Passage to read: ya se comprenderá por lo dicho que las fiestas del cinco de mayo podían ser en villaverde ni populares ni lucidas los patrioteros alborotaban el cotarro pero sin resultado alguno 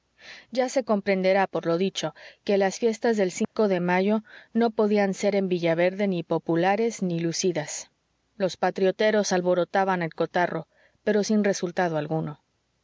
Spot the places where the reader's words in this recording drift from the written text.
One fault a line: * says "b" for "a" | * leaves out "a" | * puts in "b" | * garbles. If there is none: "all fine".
* puts in "no"